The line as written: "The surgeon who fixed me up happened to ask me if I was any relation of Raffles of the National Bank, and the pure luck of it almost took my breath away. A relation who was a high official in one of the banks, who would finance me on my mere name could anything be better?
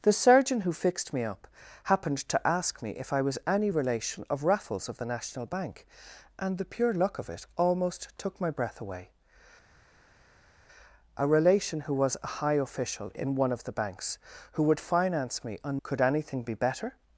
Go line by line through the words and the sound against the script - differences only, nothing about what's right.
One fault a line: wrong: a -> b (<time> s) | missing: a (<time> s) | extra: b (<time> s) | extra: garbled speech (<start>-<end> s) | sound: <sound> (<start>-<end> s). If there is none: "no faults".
missing: my mere name (15.8 s)